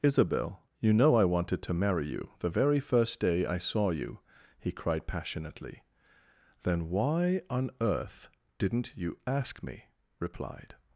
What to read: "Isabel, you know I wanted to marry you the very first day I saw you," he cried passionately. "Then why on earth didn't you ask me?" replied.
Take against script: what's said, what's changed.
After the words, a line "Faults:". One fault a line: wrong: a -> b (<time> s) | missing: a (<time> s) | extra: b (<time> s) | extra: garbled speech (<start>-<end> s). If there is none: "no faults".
"Isabel, you know I wanted to marry you the very first day I saw you," he cried passionately. "Then why on earth didn't you ask me?" replied.
Faults:
no faults